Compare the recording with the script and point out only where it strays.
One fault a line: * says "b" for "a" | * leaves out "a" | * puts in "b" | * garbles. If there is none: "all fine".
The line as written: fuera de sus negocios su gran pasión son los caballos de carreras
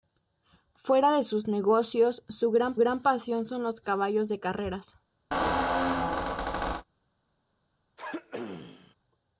* puts in "gran"